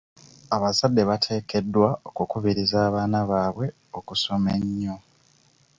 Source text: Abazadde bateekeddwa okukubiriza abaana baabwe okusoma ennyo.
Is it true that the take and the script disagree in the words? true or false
false